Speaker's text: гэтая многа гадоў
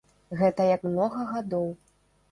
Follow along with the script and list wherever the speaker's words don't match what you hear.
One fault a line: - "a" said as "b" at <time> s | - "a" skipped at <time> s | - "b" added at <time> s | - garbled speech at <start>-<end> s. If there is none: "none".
none